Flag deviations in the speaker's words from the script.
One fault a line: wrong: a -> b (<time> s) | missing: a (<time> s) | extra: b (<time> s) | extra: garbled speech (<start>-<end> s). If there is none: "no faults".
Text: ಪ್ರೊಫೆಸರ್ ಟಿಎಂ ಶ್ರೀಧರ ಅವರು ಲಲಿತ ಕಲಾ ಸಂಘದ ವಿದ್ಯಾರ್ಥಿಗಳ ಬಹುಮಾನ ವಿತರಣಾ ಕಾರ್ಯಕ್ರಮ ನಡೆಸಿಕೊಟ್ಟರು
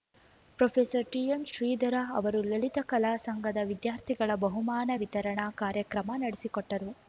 no faults